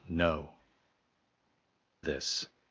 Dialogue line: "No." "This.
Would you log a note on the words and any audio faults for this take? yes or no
no